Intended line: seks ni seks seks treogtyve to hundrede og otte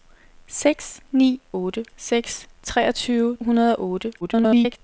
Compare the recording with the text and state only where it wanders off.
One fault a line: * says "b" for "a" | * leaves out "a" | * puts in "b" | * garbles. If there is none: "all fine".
* says "otte" for "seks"
* leaves out "to"
* garbles